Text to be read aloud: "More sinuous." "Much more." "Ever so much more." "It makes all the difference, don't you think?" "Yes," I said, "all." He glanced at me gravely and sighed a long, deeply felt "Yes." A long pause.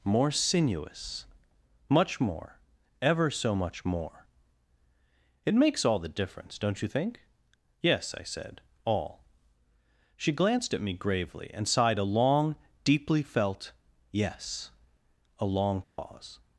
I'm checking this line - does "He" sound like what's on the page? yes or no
no